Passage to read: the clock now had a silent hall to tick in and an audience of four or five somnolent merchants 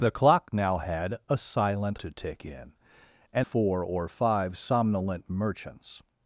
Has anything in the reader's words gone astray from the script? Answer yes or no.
yes